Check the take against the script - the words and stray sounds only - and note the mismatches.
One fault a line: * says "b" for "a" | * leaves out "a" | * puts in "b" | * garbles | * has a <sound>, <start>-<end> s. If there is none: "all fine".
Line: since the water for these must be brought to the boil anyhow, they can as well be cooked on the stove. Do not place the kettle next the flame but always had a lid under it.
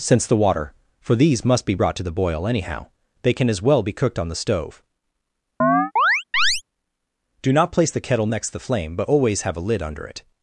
* has a chirp, 5.6-6.6 s
* says "have" for "had"